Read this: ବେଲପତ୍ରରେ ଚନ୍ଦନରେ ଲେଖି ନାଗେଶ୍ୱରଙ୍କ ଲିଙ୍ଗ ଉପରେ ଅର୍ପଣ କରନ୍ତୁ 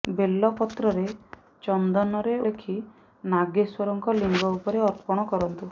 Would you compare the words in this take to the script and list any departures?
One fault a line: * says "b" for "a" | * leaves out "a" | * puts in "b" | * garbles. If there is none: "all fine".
all fine